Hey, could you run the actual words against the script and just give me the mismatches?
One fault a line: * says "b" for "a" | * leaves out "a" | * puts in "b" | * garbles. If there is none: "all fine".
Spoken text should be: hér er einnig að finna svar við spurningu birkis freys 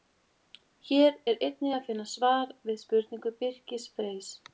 all fine